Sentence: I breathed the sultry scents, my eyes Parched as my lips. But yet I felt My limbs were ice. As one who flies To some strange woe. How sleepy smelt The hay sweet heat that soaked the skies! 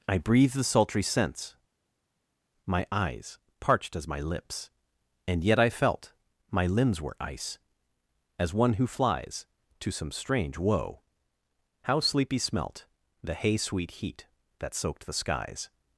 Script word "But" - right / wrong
wrong